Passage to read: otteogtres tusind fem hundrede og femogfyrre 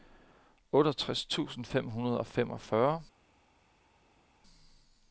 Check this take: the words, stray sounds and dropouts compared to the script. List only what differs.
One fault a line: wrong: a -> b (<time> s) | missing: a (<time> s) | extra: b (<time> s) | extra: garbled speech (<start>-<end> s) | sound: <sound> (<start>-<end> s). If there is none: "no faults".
no faults